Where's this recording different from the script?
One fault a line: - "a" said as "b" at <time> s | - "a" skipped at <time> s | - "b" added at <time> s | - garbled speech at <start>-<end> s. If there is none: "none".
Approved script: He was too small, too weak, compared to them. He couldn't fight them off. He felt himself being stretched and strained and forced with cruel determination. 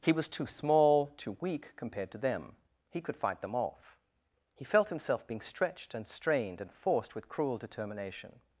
- "couldn't" said as "could" at 3.0 s